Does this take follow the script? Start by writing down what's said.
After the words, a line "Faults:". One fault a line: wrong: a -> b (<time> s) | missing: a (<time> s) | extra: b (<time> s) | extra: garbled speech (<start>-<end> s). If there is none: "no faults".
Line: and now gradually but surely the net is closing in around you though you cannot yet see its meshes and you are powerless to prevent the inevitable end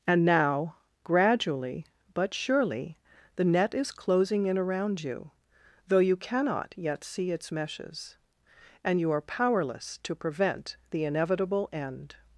and now gradually but surely the net is closing in around you though you cannot yet see its meshes and you are powerless to prevent the inevitable end
Faults:
no faults